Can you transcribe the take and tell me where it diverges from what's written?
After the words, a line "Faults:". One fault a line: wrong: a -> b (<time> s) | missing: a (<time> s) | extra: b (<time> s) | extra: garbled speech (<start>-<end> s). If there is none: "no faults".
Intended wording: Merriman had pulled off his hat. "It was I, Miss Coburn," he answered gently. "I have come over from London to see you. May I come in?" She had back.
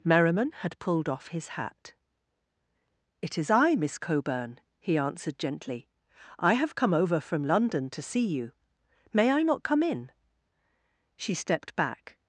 Merriman had pulled off his hat. "It is I, Miss Coburn," he answered gently. "I have come over from London to see you. May I not come in?" She stepped back.
Faults:
wrong: was -> is (3.4 s)
extra: not (9.4 s)
wrong: had -> stepped (11.3 s)